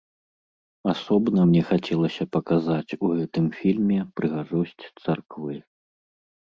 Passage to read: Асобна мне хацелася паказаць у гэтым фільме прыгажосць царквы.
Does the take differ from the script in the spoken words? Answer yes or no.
no